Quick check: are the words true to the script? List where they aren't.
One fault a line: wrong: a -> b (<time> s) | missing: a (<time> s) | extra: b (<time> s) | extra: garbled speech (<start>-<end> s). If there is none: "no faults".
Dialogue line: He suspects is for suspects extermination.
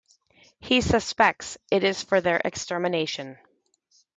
extra: it (1.7 s)
wrong: suspects -> their (2.2 s)